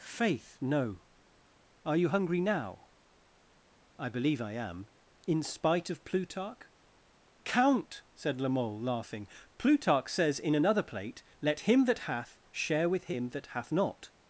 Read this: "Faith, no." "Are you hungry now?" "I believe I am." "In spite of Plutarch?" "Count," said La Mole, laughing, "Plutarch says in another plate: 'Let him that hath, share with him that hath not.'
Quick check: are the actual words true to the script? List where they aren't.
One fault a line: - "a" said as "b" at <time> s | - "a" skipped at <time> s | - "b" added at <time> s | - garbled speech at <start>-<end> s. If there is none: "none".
none